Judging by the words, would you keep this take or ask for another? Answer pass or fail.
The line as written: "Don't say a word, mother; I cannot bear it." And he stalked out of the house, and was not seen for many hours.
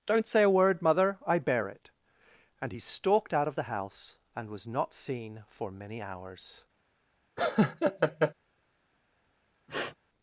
fail